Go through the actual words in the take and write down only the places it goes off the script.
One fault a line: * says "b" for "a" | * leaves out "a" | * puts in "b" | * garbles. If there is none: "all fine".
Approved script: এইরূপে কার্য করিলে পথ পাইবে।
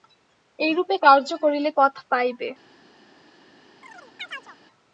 all fine